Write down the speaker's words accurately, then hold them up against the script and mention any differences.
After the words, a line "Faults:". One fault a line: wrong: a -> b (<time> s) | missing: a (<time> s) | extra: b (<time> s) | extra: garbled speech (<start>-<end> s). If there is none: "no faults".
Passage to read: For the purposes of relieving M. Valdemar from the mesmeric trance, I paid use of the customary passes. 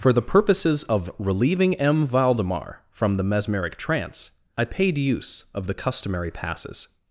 For the purposes of relieving M. Valdemar from the mesmeric trance, I paid use of the customary passes.
Faults:
no faults